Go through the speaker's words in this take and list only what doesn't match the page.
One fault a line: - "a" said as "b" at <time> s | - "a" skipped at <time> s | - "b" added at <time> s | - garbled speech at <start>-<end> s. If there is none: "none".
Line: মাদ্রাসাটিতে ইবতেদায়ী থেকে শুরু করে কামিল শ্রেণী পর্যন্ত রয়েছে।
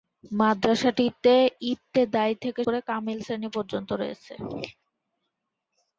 - "শুরু" skipped at 2.6 s